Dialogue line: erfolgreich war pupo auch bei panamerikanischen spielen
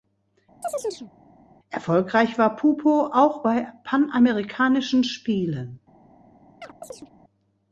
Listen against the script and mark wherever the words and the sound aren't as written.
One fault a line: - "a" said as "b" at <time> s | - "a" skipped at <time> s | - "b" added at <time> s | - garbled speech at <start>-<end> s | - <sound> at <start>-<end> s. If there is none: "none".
- chirp at 0.6-1.1 s
- chirp at 6.6-7.1 s